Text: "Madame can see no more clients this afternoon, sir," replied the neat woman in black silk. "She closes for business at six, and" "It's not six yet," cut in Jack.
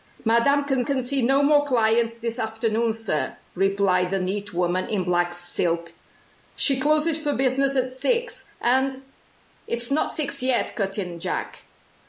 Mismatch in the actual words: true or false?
true